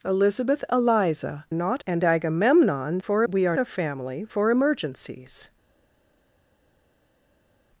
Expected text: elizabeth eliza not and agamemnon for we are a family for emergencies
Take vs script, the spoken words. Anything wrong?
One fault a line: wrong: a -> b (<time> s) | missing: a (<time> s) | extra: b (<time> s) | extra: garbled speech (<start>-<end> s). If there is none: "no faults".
no faults